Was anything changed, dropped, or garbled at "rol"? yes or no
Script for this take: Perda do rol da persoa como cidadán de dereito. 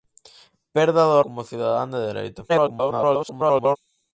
yes